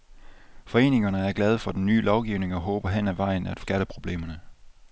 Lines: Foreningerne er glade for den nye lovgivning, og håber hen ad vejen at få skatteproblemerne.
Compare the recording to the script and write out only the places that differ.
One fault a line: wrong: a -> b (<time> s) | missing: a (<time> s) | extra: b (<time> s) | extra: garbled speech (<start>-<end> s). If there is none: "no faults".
no faults